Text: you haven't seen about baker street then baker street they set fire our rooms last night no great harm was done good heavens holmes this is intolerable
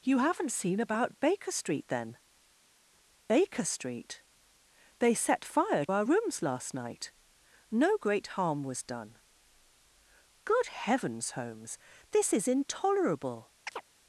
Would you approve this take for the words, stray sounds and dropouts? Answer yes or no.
no